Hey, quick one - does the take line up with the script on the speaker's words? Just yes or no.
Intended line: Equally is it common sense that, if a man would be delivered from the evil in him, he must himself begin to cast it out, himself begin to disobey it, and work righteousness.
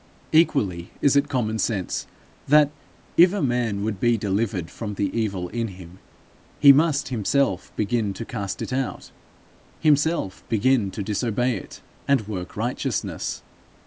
yes